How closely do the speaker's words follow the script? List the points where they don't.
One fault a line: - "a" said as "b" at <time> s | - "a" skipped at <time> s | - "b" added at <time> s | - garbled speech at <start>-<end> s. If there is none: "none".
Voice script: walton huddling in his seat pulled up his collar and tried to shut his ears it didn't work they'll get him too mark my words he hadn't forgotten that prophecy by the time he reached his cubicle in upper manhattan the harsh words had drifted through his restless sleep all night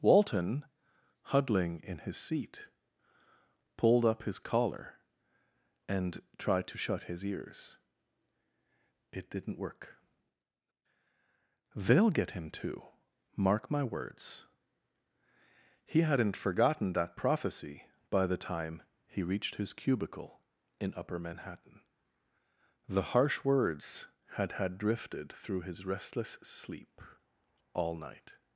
- "had" added at 24.5 s